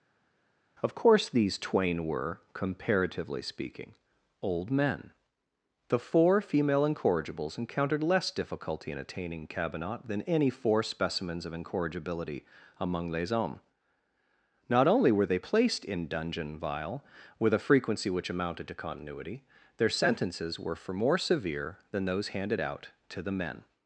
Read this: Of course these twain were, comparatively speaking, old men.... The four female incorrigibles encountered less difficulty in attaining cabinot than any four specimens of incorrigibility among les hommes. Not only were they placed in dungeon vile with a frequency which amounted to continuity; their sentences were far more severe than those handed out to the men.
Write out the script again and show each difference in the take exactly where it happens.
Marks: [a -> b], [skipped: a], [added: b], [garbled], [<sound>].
Of course these twain were, comparatively speaking, old men.... The four female incorrigibles encountered less difficulty in attaining cabinot than any four specimens of incorrigibility among les hommes. Not only were they placed in dungeon vile with a frequency which amounted to continuity; their sentences were [far -> for] more severe than those handed out to the men.